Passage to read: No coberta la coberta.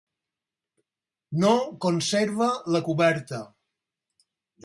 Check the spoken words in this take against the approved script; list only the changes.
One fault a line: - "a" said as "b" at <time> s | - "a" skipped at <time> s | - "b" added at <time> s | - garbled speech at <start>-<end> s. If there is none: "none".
- "coberta" said as "conserva" at 1.9 s